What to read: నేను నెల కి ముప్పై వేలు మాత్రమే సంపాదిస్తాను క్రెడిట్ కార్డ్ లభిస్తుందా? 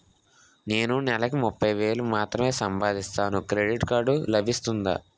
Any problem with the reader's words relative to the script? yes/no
no